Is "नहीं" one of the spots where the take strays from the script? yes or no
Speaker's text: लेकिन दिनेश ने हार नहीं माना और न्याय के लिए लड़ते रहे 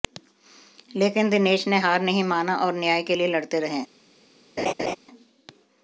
no